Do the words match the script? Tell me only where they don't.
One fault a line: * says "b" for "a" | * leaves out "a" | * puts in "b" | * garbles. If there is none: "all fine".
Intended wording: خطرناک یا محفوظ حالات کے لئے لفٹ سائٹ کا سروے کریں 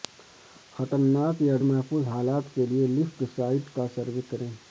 all fine